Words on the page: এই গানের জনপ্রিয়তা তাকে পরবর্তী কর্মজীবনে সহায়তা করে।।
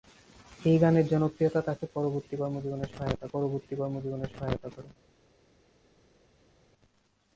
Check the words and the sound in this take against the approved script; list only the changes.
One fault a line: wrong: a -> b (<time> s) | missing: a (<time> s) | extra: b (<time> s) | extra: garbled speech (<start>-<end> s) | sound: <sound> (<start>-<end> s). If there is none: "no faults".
extra: পরবর্তী কর্মজীবনে সহায়তা (3.3 s)